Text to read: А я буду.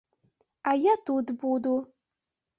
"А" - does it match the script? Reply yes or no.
yes